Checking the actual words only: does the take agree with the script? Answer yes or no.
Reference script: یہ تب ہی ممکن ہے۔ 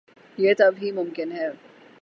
yes